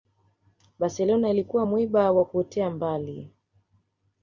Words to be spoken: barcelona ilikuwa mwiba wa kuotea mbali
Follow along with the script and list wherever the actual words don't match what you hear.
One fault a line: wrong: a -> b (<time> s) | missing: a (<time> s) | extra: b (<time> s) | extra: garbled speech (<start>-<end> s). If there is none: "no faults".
no faults